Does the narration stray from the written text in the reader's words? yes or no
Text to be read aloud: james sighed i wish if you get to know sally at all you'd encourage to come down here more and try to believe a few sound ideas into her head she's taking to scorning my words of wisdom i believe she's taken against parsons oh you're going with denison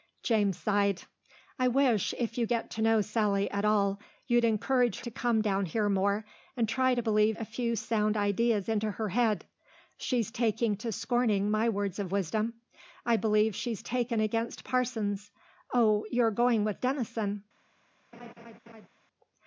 no